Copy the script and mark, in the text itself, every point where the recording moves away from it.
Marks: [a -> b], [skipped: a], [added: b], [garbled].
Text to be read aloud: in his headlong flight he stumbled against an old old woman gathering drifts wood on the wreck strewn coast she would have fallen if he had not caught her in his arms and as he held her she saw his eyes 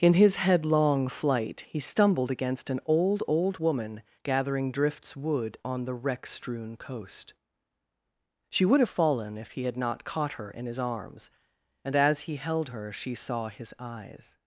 in his headlong flight he stumbled against an old old woman gathering drifts wood on the wreck strewn coast she would have fallen if he had not caught her in his arms and as he held her she saw his eyes